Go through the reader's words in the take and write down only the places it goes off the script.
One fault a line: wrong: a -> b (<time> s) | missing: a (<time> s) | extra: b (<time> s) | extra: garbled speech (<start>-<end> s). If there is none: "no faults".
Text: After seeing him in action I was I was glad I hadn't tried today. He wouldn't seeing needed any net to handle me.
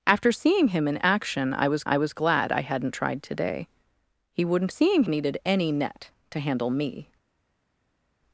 no faults